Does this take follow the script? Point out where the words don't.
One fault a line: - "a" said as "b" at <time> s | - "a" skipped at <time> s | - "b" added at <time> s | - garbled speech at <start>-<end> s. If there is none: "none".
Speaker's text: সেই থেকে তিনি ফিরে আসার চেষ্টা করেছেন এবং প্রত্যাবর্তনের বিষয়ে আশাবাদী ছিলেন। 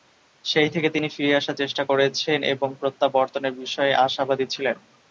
none